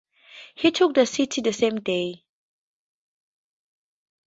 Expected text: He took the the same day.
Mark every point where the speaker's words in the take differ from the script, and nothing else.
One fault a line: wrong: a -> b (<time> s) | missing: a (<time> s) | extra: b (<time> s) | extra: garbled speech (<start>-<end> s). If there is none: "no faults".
extra: city (1.1 s)